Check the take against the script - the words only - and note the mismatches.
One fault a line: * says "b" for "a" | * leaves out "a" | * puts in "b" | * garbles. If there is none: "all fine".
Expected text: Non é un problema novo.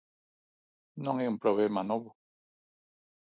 all fine